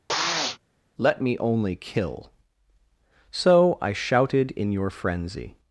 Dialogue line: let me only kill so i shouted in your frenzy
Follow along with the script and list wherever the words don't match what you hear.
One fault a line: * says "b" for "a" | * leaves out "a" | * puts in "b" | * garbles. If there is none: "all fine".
all fine